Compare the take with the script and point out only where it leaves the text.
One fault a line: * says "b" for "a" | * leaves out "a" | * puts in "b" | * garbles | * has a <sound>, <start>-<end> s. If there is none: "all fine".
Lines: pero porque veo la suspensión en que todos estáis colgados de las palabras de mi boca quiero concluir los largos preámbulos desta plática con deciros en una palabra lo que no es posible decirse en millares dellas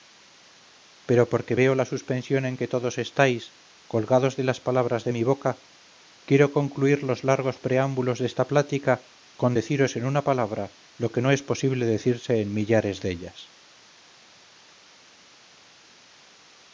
all fine